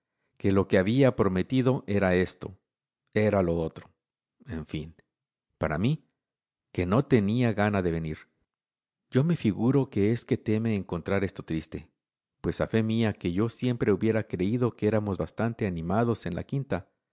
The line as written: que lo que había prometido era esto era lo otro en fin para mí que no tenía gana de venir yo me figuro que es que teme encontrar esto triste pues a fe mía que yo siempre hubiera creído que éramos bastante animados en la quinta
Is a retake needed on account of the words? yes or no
no